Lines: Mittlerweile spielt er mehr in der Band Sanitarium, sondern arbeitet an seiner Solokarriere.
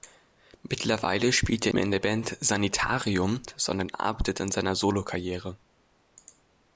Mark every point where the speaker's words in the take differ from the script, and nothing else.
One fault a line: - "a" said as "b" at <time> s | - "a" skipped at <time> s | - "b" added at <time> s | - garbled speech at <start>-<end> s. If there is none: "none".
none